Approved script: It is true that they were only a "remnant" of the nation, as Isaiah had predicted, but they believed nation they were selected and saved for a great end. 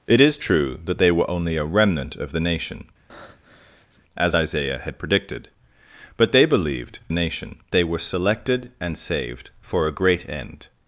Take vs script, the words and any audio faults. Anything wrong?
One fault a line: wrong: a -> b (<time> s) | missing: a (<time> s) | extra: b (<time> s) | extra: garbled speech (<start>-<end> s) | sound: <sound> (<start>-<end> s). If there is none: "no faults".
sound: breath (3.1-4.0 s)